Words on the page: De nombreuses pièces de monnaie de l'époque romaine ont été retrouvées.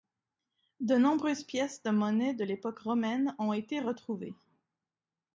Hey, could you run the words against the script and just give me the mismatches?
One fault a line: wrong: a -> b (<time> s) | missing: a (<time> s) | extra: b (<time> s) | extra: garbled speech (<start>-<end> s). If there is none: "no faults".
no faults